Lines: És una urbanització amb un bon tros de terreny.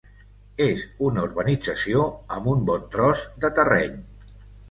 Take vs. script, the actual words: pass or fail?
pass